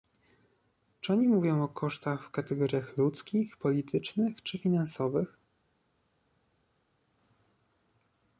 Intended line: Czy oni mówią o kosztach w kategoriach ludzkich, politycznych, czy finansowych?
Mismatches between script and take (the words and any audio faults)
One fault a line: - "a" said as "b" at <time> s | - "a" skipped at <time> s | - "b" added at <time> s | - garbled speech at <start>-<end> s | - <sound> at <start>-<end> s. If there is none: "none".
none